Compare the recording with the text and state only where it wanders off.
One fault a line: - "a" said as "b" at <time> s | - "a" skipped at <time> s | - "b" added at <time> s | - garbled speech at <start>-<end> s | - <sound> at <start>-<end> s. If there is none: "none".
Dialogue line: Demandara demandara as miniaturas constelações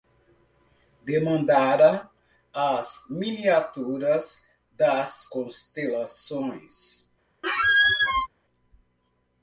- "demandara" skipped at 2.1 s
- "das" added at 4.7 s
- squeak at 7.4-8.3 s